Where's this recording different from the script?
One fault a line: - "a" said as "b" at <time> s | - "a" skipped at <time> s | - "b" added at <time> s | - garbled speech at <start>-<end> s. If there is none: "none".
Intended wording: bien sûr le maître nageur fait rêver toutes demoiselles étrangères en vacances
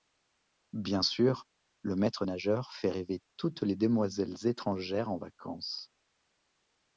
- "les" added at 3.6 s